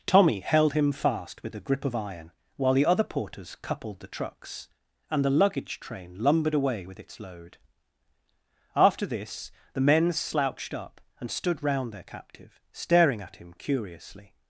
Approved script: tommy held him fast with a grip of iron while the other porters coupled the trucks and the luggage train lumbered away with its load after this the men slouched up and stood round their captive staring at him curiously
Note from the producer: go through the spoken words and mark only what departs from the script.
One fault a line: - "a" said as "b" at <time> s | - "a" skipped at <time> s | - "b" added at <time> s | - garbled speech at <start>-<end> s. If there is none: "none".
none